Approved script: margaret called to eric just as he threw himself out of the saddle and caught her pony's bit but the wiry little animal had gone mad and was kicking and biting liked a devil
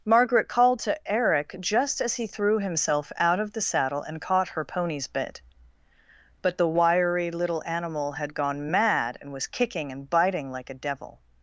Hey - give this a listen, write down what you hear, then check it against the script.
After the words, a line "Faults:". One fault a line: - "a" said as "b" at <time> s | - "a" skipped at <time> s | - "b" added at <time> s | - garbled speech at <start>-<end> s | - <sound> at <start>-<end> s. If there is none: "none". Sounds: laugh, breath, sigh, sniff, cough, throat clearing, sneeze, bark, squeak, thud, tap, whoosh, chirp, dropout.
margaret called to eric just as he threw himself out of the saddle and caught her pony's bit but the wiry little animal had gone mad and was kicking and biting like a devil
Faults:
- "liked" said as "like" at 10.5 s